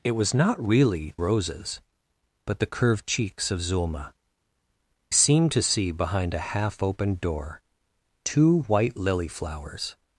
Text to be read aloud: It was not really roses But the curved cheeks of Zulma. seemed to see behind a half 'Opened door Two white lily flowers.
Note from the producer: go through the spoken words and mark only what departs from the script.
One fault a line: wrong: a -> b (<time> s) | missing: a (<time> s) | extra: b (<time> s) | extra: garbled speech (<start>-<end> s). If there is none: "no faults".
no faults